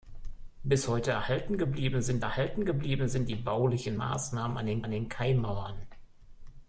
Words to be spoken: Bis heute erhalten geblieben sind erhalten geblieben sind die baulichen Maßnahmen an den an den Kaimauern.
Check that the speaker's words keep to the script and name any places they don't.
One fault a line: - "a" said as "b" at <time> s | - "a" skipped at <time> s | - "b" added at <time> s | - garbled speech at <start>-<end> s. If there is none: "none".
none